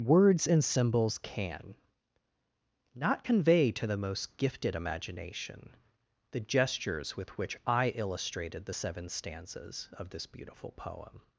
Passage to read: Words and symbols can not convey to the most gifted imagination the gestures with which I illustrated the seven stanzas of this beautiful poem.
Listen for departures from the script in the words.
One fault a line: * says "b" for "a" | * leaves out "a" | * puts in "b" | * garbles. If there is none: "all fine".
all fine